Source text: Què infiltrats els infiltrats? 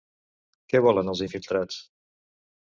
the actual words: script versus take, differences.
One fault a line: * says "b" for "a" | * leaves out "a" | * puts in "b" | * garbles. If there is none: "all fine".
* says "volen" for "infiltrats"